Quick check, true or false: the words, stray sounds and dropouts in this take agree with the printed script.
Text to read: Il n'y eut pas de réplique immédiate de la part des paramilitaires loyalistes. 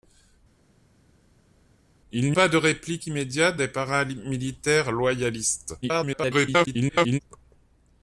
false